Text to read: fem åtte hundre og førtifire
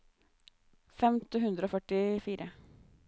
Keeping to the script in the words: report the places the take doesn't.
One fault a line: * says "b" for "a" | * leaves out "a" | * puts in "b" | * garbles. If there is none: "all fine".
all fine